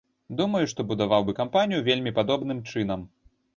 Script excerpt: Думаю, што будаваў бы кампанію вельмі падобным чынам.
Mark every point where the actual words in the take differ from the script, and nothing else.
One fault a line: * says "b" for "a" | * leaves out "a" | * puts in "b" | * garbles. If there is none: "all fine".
all fine